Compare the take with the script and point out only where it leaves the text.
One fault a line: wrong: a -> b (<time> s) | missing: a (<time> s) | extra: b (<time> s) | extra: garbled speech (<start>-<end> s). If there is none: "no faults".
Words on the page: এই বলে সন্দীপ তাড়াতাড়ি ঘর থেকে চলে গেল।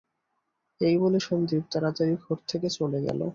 no faults